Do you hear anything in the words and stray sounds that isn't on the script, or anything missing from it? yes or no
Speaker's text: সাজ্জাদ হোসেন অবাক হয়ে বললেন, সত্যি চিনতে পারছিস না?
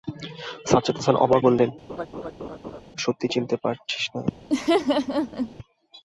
yes